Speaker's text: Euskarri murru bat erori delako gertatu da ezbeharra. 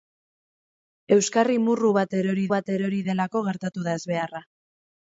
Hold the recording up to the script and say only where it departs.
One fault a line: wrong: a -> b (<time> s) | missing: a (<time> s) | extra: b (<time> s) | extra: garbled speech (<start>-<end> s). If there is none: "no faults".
extra: bat erori (2.5 s)